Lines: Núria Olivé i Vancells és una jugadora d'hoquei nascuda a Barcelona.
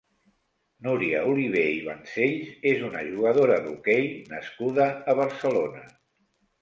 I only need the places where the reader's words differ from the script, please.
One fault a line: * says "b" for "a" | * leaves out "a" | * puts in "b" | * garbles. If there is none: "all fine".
all fine